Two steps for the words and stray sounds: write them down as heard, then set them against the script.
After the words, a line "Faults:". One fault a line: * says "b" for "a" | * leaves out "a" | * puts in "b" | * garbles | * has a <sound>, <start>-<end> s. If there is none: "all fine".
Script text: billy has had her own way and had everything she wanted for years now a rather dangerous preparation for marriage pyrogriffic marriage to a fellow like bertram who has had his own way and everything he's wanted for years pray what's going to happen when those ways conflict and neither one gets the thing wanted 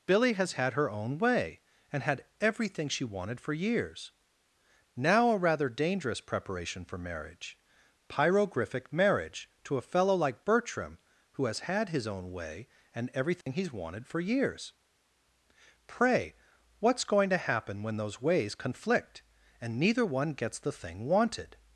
billy has had her own way and had everything she wanted for years now a rather dangerous preparation for marriage pyrogriffic marriage to a fellow like bertram who has had his own way and everything he's wanted for years pray what's going to happen when those ways conflict and neither one gets the thing wanted
Faults:
* has a dropout, 13.4-13.5 s